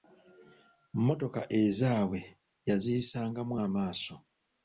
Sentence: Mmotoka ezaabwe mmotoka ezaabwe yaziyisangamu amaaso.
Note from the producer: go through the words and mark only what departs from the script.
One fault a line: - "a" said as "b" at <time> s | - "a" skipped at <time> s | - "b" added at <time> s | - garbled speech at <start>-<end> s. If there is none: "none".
- "mmotoka ezaabwe" skipped at 2.2 s